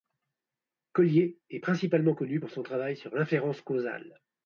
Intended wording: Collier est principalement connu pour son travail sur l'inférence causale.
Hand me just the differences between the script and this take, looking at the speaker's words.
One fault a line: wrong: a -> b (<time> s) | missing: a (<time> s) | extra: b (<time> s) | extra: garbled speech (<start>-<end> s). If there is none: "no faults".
no faults